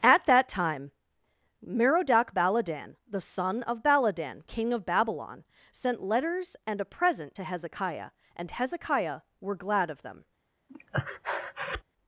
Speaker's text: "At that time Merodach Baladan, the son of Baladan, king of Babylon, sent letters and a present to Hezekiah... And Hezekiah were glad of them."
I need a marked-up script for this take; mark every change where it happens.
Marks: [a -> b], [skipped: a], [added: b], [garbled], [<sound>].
"At that time Merodach Baladan, the son of Baladan, king of Babylon, sent letters and a present to Hezekiah... And Hezekiah were glad of them." [breath]